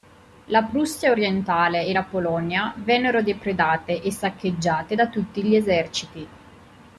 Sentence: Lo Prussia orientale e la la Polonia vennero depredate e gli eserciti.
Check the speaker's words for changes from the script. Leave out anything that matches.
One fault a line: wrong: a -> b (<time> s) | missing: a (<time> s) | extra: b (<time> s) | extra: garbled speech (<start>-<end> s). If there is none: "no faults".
wrong: Lo -> La (0.5 s)
missing: la (2.0 s)
extra: saccheggiate da tutti (4.1 s)